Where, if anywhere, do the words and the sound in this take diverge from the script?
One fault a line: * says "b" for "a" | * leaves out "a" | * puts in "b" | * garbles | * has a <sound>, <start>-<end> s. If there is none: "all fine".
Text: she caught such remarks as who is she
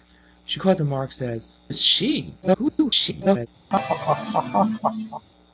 * leaves out "such"
* leaves out "who"
* garbles
* has a laugh, 3.7-5.3 s